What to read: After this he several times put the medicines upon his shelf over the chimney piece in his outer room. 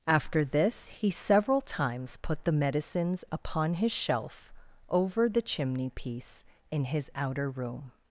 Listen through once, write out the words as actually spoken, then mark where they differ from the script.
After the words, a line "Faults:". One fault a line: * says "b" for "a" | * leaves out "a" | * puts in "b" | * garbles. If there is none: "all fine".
After this he several times put the medicines upon his shelf over the chimney piece in his outer room.
Faults:
all fine